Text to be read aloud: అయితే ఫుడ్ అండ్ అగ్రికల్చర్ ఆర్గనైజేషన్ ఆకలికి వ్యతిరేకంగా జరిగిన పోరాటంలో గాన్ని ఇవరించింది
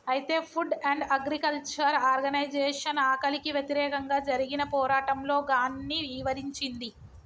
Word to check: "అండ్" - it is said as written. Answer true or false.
true